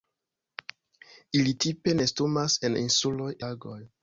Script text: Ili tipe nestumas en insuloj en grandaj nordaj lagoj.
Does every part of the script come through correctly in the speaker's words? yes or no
no